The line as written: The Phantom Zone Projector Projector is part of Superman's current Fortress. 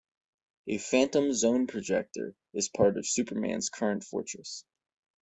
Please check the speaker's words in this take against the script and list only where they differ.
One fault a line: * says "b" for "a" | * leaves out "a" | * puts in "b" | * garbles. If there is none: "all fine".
* says "A" for "The"
* leaves out "Projector"